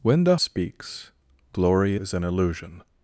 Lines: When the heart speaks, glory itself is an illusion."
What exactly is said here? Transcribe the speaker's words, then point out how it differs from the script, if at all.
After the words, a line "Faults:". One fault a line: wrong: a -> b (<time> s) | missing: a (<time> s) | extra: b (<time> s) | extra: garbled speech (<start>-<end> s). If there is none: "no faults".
When the speaks, glory is an illusion."
Faults:
missing: heart (0.3 s)
missing: itself (2.0 s)